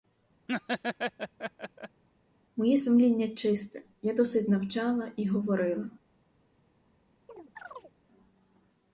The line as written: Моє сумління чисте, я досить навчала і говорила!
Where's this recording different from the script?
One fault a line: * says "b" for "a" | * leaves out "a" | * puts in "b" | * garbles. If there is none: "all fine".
all fine